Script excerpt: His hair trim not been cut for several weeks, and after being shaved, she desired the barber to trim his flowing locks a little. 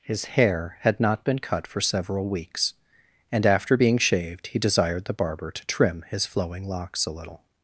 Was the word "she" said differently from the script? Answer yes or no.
yes